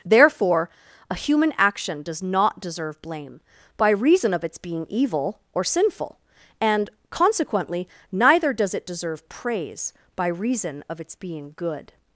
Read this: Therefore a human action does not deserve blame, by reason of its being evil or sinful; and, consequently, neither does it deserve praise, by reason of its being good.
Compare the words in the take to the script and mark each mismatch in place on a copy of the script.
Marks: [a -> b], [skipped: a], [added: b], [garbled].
Therefore a human action does not deserve blame, by reason of its being evil or sinful; and, consequently, neither does it deserve praise, by reason of its being good.